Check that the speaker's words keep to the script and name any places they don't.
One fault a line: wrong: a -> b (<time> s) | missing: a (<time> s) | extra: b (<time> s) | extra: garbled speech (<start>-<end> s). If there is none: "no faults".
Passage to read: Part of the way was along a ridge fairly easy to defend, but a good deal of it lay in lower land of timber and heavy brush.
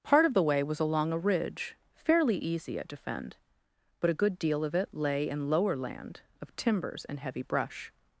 wrong: to -> at (2.8 s)
wrong: timber -> timbers (6.5 s)